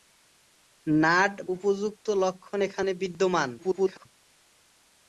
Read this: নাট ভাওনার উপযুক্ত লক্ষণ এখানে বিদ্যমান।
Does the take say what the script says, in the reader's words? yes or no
no